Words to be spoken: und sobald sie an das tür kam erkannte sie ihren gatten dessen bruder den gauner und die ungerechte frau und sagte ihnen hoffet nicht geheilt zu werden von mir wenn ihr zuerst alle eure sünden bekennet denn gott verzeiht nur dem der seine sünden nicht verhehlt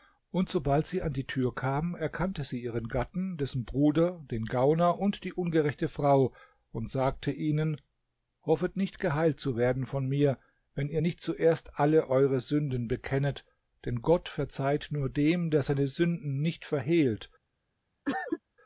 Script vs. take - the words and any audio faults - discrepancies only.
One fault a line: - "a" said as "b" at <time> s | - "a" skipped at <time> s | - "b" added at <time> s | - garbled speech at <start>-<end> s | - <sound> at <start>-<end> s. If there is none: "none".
- "das" said as "die" at 1.1 s
- "nicht" added at 11.0 s
- cough at 18.1-18.4 s